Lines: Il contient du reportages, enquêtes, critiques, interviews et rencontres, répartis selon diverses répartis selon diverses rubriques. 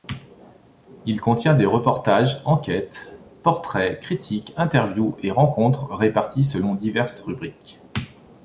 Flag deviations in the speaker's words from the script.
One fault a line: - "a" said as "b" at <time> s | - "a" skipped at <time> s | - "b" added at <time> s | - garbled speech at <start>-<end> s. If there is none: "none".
- "du" said as "des" at 1.5 s
- "portraits" added at 3.4 s
- "répartis selon diverses" skipped at 7.2 s